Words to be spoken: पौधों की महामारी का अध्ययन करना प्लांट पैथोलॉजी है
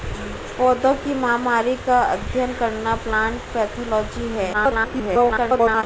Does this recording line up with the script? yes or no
no